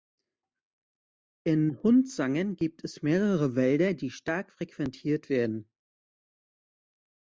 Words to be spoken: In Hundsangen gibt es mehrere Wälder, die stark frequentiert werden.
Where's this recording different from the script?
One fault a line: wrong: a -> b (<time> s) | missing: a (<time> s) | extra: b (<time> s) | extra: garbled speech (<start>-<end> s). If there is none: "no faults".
no faults